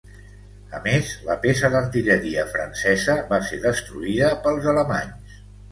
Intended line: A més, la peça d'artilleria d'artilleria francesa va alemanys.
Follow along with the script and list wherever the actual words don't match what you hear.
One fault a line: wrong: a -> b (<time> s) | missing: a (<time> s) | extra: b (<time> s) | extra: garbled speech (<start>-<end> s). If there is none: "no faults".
missing: d'artilleria (2.5 s)
extra: ser destruïda pels (3.5 s)